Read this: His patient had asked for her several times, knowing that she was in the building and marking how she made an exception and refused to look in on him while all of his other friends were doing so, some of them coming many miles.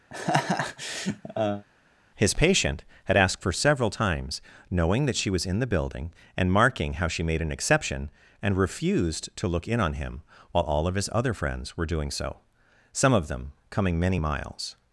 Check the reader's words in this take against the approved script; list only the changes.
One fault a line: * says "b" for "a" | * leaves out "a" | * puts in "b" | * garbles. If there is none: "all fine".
* leaves out "her"